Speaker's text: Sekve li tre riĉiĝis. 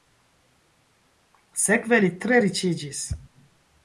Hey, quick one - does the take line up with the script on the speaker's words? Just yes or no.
yes